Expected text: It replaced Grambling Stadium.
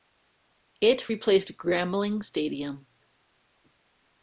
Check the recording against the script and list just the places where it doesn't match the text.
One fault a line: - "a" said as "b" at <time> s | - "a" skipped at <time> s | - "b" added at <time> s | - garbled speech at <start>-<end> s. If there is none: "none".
none